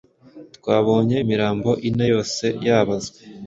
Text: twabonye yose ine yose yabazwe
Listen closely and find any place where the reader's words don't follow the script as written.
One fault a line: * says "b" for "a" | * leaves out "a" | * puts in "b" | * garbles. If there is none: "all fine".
* says "imirambo" for "yose"